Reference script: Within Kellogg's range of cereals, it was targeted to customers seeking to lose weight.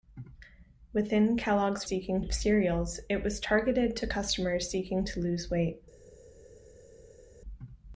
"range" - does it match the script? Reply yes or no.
no